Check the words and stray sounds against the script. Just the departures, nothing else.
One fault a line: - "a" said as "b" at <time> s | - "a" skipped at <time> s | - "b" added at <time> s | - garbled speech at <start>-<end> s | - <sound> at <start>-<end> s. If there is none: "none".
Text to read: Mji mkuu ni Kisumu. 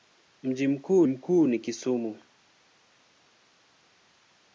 - "mkuu" added at 1.0 s